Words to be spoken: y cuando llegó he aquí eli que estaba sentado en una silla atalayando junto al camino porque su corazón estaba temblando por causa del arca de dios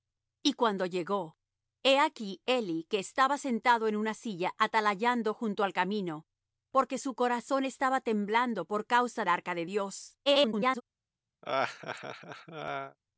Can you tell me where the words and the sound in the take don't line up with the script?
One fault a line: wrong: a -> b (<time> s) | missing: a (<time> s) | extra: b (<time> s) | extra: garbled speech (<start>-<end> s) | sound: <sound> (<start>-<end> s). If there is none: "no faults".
missing: del (9.2 s)
extra: garbled speech (10.3-10.8 s)
sound: laugh (11.4-13.0 s)